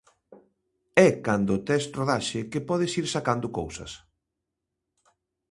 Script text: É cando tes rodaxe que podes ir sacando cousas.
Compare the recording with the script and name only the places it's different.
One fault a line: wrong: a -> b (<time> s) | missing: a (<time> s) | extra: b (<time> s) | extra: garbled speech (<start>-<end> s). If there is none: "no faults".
no faults